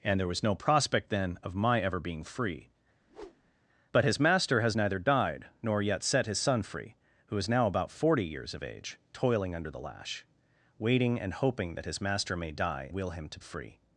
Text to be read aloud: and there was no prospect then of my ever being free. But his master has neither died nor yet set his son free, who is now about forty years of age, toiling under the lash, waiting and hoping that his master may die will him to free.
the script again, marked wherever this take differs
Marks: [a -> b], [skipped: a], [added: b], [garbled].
and there was no prospect then of my ever being free. But his master has neither died nor yet set his son free, who is now about forty years of age, toiling under the lash, waiting and hoping that his master may die will him to free.